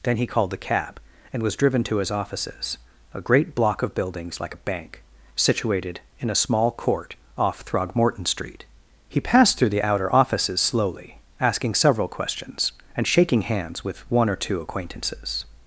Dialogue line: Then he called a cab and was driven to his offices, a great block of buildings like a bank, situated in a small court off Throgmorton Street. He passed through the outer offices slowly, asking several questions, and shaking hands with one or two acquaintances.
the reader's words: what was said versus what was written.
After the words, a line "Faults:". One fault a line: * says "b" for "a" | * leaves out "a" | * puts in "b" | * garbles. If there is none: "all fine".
Then he called the cab and was driven to his offices, a great block of buildings like a bank, situated in a small court off Throgmorton Street. He passed through the outer offices slowly, asking several questions, and shaking hands with one or two acquaintances.
Faults:
* says "the" for "a"